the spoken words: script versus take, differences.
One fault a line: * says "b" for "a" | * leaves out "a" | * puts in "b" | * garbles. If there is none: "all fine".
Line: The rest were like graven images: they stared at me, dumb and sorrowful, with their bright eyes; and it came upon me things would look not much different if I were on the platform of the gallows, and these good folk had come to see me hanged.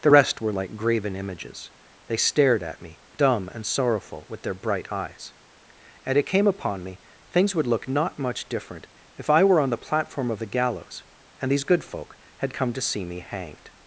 all fine